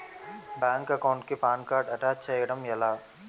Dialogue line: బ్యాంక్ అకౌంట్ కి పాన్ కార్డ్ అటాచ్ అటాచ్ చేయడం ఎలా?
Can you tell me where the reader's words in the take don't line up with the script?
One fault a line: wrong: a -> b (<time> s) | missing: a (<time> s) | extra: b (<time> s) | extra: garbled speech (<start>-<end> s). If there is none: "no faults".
missing: అటాచ్ (2.2 s)